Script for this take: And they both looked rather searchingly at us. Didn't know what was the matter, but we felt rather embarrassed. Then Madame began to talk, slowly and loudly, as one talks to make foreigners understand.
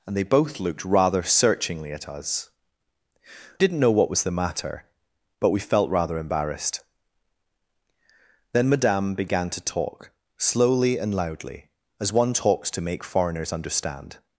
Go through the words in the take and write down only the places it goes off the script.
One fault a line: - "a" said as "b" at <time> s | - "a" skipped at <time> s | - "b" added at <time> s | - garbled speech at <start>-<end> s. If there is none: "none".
none